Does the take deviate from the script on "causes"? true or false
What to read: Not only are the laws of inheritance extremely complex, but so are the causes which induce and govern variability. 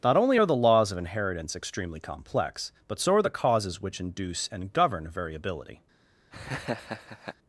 false